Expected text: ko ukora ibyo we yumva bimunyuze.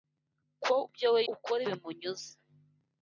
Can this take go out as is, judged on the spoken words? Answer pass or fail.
fail